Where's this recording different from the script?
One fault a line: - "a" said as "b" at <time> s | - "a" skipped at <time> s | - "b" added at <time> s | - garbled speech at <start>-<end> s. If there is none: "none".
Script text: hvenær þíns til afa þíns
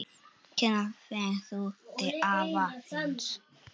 - "þíns" said as "ferðu" at 1.1 s